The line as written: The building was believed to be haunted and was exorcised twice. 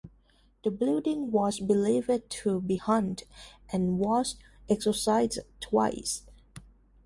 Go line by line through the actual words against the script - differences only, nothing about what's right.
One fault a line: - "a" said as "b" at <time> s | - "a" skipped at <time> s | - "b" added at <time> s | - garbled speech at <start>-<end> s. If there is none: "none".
none